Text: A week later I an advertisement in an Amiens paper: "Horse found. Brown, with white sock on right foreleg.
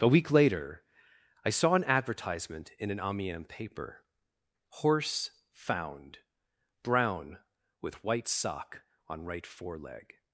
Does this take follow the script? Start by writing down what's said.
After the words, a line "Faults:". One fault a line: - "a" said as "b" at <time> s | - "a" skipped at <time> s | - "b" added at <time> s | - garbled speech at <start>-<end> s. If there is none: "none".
A week later I saw an advertisement in an Amiens paper: "Horse found. Brown, with white sock on right foreleg.
Faults:
- "saw" added at 1.5 s